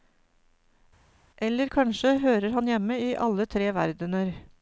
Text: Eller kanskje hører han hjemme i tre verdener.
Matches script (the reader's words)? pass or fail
fail